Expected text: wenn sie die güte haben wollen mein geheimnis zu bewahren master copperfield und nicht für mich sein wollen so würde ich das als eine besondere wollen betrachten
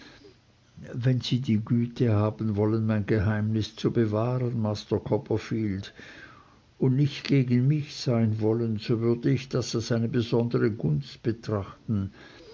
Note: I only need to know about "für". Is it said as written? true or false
false